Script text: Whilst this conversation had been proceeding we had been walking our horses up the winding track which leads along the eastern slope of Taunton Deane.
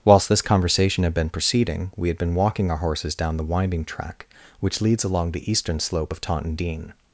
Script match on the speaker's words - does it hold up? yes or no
no